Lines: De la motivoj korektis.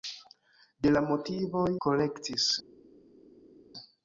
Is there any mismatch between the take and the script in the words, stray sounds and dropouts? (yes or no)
no